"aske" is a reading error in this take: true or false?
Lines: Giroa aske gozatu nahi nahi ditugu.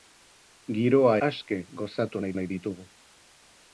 false